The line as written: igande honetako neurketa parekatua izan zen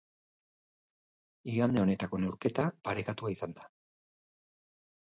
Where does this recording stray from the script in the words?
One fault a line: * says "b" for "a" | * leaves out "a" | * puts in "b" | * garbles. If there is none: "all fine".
* says "da" for "zen"